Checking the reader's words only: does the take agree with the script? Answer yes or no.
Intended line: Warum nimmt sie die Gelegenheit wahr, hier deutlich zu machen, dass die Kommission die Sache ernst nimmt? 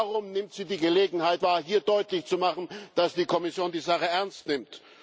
yes